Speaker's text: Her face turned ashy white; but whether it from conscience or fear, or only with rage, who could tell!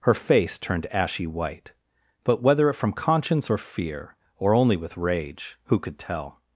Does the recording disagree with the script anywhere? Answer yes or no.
no